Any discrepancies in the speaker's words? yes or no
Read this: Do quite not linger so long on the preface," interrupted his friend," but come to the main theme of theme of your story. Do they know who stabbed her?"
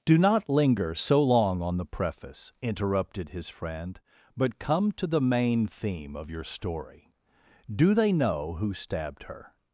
yes